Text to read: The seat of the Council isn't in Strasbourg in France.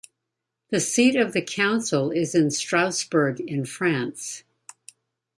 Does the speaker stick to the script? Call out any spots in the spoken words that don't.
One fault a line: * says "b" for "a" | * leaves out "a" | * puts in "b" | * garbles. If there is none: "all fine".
* says "is" for "isn't"